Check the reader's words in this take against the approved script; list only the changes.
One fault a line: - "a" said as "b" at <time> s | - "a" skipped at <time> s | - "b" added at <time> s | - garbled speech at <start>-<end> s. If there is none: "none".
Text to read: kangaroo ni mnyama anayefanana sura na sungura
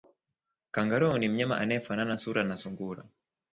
none